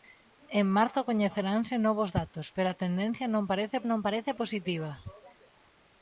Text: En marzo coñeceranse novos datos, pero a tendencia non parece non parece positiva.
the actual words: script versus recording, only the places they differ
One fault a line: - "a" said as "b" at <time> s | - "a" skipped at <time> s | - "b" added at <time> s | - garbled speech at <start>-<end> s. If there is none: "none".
none